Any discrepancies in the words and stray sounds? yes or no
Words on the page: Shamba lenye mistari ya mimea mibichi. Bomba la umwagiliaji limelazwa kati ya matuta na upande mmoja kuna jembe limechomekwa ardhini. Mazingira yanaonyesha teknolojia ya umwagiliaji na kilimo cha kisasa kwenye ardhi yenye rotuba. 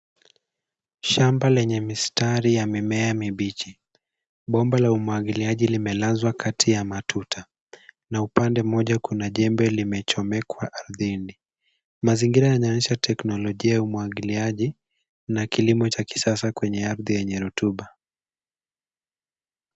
no